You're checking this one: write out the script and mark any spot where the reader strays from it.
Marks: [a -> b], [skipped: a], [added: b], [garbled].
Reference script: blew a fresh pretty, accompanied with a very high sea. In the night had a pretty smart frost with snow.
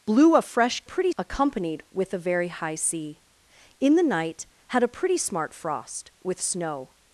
blew a fresh pretty, accompanied with a very high sea. In the night had a pretty smart frost with snow.